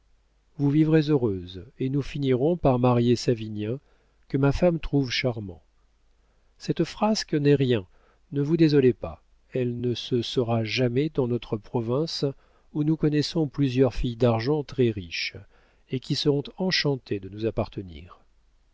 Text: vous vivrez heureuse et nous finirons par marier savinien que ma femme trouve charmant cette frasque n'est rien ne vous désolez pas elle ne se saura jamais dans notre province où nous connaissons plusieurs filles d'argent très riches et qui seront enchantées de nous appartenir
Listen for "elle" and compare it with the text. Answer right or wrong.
right